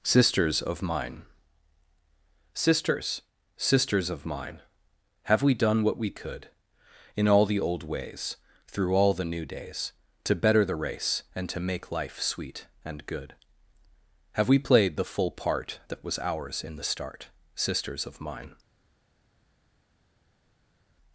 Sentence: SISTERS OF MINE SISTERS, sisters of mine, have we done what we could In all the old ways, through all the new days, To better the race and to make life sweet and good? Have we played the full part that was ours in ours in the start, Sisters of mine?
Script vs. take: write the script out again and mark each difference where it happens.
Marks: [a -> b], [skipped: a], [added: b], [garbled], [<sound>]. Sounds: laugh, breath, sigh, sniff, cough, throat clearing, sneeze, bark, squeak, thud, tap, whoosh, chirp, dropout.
SISTERS OF MINE SISTERS, sisters of mine, have we done what we could In all the old ways, through all the new days, To better the race and to make life sweet and good? Have we played the full part that was ours in [skipped: ours in] the start, Sisters of mine?